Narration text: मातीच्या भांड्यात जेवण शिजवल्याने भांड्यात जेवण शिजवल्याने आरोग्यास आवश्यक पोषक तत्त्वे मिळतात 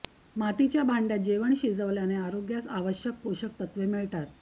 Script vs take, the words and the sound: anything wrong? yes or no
yes